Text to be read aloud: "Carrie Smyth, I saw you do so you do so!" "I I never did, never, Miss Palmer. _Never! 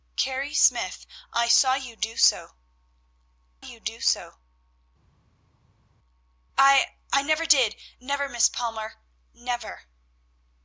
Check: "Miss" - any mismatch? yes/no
no